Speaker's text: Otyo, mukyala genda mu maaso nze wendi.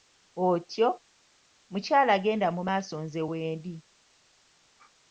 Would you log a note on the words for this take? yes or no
no